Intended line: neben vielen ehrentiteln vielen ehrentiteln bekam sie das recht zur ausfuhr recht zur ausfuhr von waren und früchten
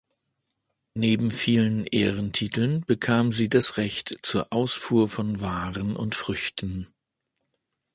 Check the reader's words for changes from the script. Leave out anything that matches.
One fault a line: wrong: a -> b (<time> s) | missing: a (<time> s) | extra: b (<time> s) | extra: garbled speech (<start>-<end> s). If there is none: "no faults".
missing: vielen ehrentiteln (2.8 s)
missing: recht zur ausfuhr (5.1 s)